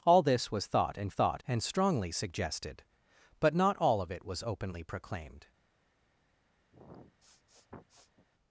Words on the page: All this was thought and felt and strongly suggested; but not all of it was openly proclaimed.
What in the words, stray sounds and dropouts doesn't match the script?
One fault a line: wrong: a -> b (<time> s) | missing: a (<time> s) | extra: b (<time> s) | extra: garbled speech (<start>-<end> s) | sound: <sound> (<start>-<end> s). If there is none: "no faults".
wrong: felt -> thought (1.1 s)
sound: sniff (6.7-8.3 s)